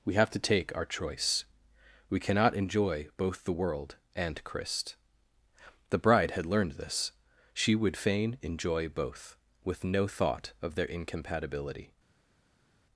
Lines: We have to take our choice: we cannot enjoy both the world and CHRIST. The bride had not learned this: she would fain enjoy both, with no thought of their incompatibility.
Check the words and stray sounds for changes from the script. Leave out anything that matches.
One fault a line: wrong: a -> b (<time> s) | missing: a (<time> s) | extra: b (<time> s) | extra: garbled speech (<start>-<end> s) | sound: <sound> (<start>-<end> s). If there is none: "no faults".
missing: not (6.4 s)